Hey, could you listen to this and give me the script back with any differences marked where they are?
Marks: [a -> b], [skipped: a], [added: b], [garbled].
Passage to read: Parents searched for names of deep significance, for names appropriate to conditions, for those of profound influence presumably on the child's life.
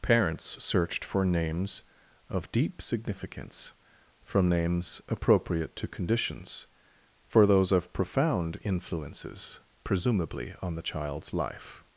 Parents searched for names of deep significance, [for -> from] names appropriate to conditions, for those of profound [influence -> influences] presumably on the child's life.